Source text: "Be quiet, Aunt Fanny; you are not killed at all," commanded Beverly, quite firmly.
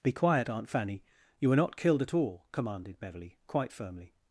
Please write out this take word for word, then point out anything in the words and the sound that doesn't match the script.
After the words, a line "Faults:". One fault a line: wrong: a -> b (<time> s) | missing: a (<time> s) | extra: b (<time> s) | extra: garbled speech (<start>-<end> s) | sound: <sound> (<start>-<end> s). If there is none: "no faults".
"Be quiet, Aunt Fanny; you were not killed at all," commanded Beverly, quite firmly.
Faults:
wrong: are -> were (1.5 s)